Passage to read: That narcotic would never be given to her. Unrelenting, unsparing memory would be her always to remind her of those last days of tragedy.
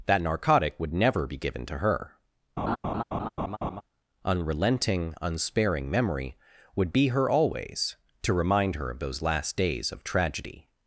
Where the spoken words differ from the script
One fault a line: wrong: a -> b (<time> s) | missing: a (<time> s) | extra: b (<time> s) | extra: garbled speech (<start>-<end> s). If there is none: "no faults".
no faults